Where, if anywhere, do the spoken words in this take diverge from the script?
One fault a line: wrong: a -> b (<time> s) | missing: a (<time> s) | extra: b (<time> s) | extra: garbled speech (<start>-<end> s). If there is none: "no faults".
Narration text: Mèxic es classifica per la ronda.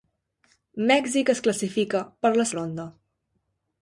no faults